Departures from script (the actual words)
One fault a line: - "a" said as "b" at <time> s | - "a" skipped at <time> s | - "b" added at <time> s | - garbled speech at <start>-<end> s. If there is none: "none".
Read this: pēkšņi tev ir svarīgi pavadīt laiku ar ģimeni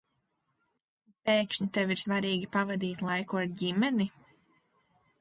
none